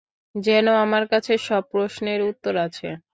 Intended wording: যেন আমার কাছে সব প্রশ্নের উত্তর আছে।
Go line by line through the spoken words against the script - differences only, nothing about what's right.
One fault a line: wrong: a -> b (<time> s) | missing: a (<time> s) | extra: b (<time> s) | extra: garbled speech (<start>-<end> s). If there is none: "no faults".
no faults